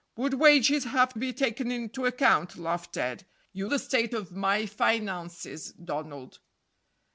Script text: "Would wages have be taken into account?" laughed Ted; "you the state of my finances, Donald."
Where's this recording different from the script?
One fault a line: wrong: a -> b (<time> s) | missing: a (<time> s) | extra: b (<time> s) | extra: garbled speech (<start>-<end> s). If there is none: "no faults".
no faults